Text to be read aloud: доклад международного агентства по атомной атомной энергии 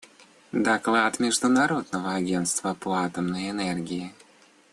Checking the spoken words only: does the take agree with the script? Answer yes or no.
no